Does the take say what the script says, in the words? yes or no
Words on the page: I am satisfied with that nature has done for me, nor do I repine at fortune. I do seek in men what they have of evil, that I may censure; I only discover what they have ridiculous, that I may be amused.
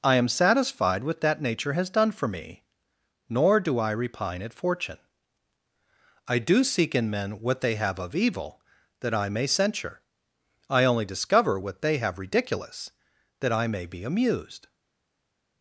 yes